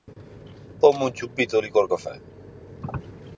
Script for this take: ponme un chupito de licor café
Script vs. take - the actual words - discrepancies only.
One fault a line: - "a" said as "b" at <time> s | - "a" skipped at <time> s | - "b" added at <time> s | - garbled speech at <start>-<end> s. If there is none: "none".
none